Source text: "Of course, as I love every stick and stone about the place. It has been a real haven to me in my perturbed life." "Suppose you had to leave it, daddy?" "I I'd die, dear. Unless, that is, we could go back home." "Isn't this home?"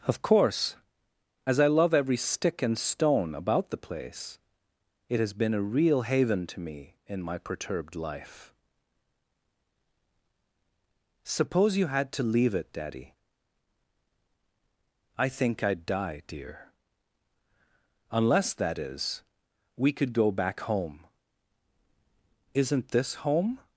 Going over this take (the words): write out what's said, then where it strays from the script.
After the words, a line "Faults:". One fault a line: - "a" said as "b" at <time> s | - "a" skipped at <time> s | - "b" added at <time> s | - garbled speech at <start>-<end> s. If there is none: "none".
"Of course, as I love every stick and stone about the place. It has been a real haven to me in my perturbed life." "Suppose you had to leave it, daddy?" "I think I'd die, dear. Unless, that is, we could go back home." "Isn't this home?"
Faults:
- "think" added at 15.3 s